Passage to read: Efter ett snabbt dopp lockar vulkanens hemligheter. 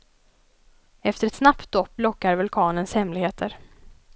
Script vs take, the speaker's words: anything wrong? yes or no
no